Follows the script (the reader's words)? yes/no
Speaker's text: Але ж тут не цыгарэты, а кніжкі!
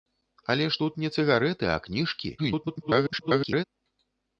no